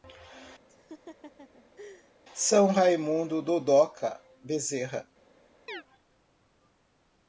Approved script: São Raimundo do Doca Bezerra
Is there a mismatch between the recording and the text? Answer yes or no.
no